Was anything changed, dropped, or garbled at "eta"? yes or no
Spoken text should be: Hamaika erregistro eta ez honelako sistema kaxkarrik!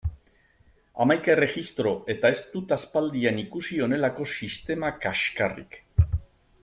no